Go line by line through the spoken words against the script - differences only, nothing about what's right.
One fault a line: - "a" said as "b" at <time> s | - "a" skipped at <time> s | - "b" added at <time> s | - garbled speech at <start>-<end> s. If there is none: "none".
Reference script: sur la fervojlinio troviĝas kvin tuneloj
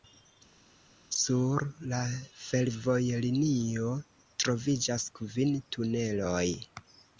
none